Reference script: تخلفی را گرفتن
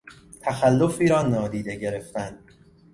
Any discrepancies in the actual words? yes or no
yes